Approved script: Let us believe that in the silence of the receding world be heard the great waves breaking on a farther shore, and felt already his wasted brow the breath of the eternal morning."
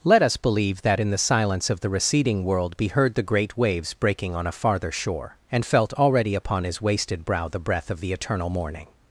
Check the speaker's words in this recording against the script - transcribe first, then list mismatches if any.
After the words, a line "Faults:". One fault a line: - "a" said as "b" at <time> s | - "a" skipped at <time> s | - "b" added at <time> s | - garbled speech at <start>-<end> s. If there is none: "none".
Let us believe that in the silence of the receding world be heard the great waves breaking on a farther shore, and felt already upon his wasted brow the breath of the eternal morning."
Faults:
- "upon" added at 6.3 s